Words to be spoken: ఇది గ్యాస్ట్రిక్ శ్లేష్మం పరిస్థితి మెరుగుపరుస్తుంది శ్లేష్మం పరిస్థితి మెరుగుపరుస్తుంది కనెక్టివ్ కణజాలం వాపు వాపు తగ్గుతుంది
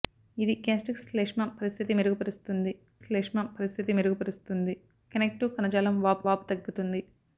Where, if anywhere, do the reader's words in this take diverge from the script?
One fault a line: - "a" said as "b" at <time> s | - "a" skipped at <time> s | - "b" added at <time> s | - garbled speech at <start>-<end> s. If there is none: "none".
none